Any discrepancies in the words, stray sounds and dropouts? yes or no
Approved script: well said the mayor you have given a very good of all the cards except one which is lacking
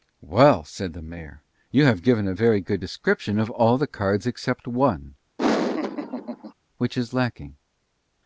yes